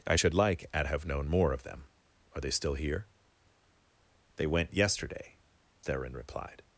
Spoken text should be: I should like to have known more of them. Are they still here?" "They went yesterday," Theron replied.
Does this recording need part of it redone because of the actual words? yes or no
yes